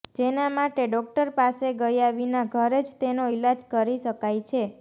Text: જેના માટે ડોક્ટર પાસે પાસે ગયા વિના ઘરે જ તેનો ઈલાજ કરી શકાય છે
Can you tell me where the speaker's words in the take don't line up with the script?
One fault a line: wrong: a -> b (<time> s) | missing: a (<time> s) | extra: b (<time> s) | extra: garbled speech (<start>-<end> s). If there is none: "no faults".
missing: પાસે (1.7 s)